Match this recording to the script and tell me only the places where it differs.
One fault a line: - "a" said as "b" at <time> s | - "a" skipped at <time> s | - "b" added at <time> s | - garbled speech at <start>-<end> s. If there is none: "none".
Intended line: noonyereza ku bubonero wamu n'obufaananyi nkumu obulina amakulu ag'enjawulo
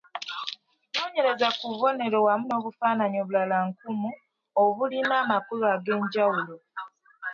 - "obulala" added at 3.2 s